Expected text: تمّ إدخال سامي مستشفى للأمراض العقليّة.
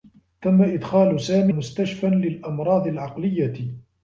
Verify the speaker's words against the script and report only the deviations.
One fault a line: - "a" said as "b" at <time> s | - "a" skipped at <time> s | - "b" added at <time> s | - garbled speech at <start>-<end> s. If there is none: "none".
none